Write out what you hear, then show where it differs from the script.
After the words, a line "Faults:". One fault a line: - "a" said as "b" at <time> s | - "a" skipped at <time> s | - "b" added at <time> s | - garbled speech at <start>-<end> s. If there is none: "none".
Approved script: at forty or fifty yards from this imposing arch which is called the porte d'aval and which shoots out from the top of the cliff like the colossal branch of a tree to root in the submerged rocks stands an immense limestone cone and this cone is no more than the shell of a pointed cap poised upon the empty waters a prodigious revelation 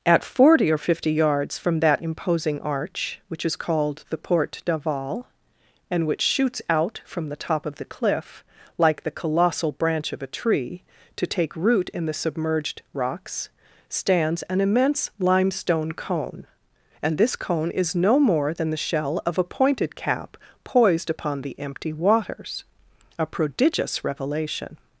at forty or fifty yards from that imposing arch which is called the porte d'aval and which shoots out from the top of the cliff like the colossal branch of a tree to take root in the submerged rocks stands an immense limestone cone and this cone is no more than the shell of a pointed cap poised upon the empty waters a prodigious revelation
Faults:
- "this" said as "that" at 1.8 s
- "take" added at 11.3 s